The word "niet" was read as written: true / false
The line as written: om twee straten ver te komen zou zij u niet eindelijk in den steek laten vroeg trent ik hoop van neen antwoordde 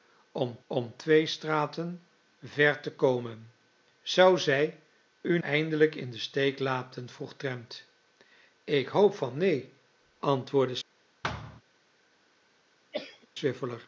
false